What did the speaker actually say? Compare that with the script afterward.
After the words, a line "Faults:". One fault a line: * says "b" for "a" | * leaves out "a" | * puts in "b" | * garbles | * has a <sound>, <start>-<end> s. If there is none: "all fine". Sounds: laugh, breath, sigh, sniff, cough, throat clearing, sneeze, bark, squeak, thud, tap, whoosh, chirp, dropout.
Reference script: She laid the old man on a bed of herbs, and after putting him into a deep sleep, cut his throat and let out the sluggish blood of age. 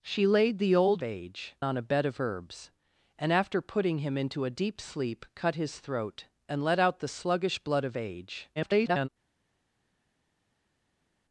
She laid the old age on a bed of herbs, and after putting him into a deep sleep, cut his throat and let out the sluggish blood of age. [garbled]
Faults:
* says "age" for "man"
* garbles